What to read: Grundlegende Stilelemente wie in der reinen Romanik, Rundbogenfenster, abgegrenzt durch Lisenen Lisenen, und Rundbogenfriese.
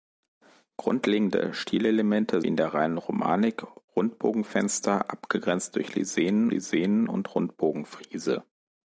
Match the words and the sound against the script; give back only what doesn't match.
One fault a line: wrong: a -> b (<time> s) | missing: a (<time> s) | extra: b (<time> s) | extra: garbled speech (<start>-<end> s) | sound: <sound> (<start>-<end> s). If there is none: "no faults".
no faults